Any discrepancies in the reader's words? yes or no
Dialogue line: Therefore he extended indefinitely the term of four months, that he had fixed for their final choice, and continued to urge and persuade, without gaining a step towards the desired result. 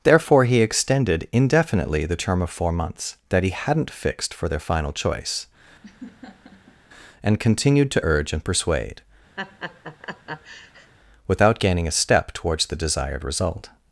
yes